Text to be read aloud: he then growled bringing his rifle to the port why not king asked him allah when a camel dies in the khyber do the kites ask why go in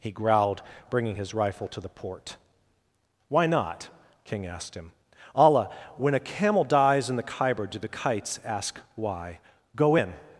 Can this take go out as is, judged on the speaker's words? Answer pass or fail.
fail